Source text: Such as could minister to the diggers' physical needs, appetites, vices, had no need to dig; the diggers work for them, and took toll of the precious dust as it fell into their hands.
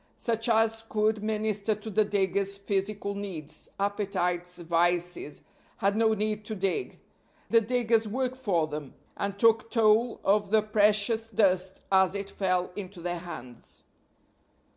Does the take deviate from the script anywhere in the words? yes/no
no